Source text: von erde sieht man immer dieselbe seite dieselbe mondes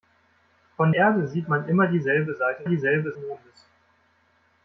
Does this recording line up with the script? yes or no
yes